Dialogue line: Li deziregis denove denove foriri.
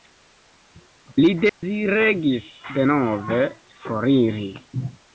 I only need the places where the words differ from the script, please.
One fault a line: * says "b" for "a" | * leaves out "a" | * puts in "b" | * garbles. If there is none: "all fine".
* leaves out "denove"